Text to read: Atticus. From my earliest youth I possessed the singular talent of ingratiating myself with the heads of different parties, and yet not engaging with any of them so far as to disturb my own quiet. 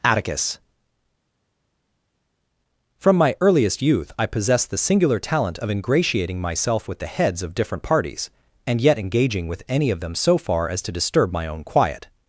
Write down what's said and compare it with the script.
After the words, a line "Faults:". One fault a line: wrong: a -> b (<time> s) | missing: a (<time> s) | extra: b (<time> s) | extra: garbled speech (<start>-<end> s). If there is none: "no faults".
Atticus. From my earliest youth I possessed the singular talent of ingratiating myself with the heads of different parties, and yet engaging with any of them so far as to disturb my own quiet.
Faults:
missing: not (9.0 s)